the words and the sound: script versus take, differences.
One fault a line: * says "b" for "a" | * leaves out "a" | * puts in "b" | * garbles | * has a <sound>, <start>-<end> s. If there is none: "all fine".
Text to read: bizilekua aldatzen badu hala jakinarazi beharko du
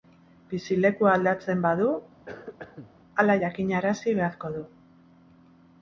* has a cough, 2.3-2.9 s